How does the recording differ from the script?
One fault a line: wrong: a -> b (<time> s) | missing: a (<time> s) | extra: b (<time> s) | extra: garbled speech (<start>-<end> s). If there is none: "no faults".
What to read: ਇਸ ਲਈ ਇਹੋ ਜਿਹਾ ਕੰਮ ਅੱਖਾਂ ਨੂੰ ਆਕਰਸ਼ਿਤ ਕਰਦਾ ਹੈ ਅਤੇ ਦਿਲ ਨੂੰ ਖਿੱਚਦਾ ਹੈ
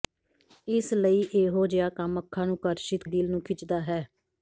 missing: ਕਰਦਾ ਹੈ ਅਤੇ (3.0 s)